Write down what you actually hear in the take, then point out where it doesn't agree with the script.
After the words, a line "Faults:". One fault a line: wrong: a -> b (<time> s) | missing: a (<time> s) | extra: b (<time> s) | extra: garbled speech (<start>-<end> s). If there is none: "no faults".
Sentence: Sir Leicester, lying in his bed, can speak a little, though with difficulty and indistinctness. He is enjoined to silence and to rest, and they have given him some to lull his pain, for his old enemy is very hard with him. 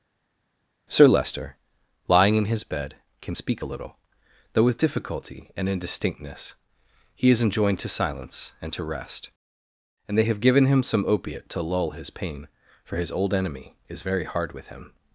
Sir Leicester, lying in his bed, can speak a little, though with difficulty and indistinctness. He is enjoined to silence and to rest, and they have given him some opiate to lull his pain, for his old enemy is very hard with him.
Faults:
extra: opiate (11.1 s)